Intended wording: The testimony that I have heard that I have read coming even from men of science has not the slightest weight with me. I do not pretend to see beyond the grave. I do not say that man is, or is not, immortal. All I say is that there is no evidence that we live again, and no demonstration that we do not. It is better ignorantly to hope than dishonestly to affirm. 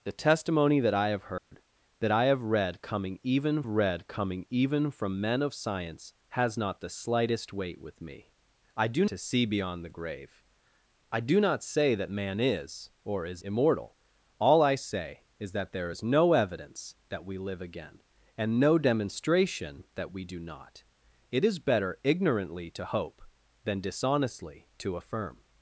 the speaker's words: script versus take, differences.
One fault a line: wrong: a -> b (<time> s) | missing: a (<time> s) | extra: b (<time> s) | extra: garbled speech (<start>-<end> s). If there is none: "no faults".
extra: read coming even (3.7 s)
missing: not pretend (9.0 s)
missing: not (13.4 s)